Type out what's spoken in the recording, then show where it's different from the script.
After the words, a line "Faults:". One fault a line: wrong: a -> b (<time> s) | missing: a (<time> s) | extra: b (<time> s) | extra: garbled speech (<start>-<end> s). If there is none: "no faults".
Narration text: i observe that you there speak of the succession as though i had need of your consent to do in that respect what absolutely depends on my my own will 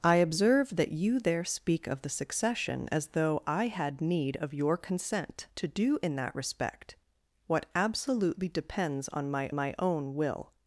i observe that you there speak of the succession as though i had need of your consent to do in that respect what absolutely depends on my my own will
Faults:
no faults